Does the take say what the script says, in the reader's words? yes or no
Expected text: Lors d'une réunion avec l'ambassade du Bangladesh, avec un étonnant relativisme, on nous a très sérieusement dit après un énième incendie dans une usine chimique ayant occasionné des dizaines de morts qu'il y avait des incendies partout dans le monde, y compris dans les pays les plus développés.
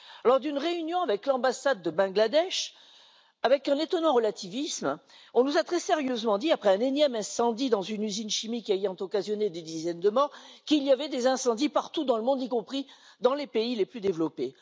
yes